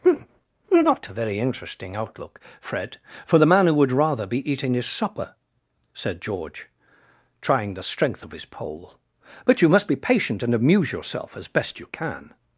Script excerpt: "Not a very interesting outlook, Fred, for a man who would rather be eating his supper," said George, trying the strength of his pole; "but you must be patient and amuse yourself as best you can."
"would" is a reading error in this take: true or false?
false